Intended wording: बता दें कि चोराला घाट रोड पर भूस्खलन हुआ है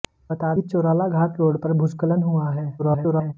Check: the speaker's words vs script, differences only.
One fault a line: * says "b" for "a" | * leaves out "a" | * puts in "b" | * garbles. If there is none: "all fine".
* leaves out "दें"
* garbles